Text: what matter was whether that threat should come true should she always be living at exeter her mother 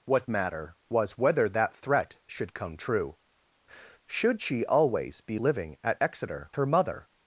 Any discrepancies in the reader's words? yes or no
no